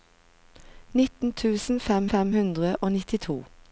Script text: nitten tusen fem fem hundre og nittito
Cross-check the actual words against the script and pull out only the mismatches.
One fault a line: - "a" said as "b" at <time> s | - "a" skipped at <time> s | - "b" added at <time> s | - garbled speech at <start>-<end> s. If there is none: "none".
none